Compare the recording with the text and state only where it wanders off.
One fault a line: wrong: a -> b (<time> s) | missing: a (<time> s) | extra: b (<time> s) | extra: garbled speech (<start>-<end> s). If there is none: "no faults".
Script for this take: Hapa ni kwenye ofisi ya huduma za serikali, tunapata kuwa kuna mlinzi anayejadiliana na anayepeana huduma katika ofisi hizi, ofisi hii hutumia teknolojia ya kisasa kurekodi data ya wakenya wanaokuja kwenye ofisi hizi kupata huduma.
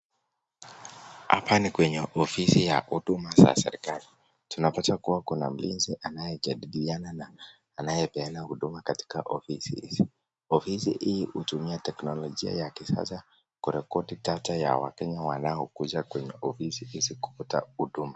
no faults